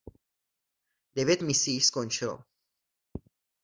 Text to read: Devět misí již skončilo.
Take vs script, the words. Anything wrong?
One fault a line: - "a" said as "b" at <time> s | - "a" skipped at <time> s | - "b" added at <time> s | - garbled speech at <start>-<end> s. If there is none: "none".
none